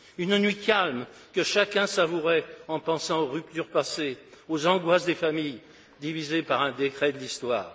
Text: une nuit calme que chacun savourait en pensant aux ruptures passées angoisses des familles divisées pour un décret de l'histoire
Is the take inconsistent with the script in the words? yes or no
yes